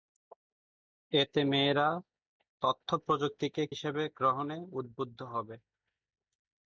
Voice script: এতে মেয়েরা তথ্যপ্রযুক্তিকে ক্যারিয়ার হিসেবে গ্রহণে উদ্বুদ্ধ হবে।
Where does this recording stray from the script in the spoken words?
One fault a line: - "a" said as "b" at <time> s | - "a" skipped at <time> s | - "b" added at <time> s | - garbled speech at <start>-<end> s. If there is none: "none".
- "ক্যারিয়ার" skipped at 3.6 s